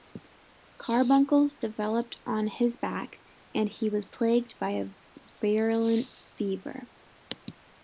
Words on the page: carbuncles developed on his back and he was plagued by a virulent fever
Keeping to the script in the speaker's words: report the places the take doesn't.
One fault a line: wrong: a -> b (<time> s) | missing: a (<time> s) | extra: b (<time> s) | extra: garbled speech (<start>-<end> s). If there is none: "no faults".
no faults